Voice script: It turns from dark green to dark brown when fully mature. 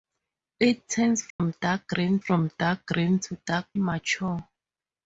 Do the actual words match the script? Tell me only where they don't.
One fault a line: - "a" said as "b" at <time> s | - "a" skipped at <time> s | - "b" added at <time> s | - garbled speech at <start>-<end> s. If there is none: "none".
- "to" said as "from" at 2.2 s
- "brown when fully" said as "green to dark" at 2.9 s